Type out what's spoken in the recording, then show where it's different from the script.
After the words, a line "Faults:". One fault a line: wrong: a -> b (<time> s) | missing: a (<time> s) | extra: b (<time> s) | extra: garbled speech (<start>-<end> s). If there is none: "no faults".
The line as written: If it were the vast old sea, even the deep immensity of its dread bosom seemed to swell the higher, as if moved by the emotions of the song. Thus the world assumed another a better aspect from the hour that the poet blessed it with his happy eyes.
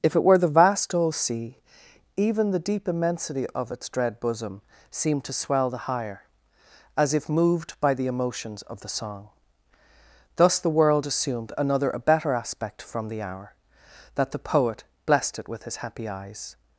If it were the vast old sea, even the deep immensity of its dread bosom seemed to swell the higher, as if moved by the emotions of the song. Thus the world assumed another a better aspect from the hour that the poet blessed it with his happy eyes.
Faults:
no faults